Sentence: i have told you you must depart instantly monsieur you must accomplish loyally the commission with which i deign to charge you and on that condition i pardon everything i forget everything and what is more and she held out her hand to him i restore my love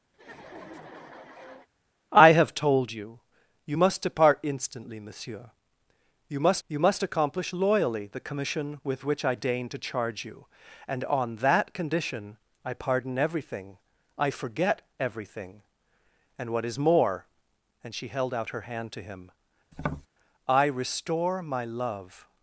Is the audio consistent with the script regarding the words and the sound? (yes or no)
no